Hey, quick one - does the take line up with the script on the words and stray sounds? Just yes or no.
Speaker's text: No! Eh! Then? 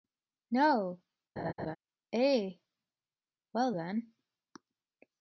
no